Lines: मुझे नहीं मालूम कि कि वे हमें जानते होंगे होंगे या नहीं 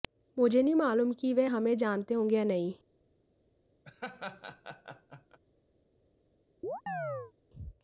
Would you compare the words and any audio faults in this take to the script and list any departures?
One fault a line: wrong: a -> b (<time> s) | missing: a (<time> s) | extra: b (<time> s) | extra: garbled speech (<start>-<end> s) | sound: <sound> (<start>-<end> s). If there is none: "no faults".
missing: कि (1.3 s)
missing: होंगे (2.4 s)
sound: laugh (3.8-5.4 s)
sound: chirp (6.6-7.3 s)